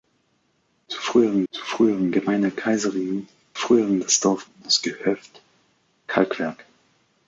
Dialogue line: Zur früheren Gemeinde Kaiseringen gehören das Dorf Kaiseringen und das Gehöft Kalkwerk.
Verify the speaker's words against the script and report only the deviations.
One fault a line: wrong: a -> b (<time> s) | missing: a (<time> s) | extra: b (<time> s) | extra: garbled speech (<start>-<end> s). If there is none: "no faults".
extra: zur früheren (1.5 s)
wrong: gehören -> früheren (3.6 s)
missing: Kaiseringen (4.5 s)